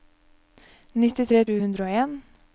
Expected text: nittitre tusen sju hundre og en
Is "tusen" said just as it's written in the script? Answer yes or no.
no